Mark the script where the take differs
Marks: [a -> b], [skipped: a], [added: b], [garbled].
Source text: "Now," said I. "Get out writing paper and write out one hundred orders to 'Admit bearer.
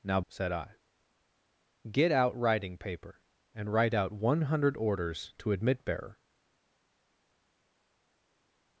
"Now," said I. "Get out writing paper and write out one hundred orders to 'Admit bearer.